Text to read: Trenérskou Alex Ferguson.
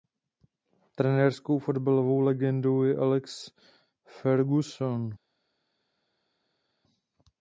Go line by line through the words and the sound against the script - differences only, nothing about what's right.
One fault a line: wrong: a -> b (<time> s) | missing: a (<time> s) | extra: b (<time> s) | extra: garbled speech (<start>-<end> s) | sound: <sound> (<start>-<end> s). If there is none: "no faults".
extra: fotbalovou legendou je (1.6 s)